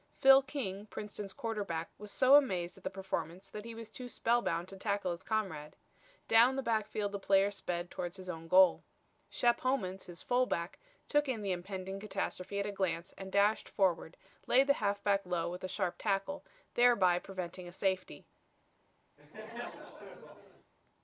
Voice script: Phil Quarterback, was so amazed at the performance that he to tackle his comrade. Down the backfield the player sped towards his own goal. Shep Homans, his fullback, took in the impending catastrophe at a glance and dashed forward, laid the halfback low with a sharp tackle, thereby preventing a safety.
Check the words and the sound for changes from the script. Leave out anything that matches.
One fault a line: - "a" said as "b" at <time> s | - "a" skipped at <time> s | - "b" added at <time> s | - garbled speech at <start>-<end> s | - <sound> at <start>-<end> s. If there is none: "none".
- "King Princeton's" added at 0.4 s
- "was too spellbound" added at 3.7 s
- laugh at 19.2-20.7 s